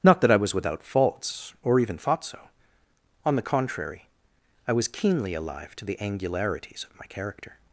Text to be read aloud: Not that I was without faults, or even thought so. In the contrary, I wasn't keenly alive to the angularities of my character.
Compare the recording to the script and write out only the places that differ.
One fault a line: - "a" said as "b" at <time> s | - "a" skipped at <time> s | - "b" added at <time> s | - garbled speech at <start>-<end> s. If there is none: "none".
- "In" said as "On" at 3.2 s
- "wasn't" said as "was" at 4.7 s